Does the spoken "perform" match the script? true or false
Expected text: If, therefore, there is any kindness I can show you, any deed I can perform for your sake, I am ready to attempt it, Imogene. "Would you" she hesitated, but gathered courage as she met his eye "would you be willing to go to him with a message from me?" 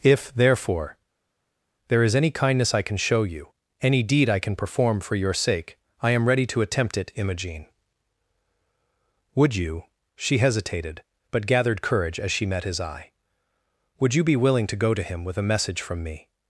true